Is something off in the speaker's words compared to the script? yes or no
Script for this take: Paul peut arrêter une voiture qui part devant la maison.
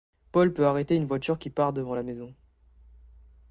no